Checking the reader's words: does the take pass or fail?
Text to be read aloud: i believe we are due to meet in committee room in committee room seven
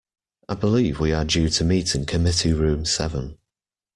fail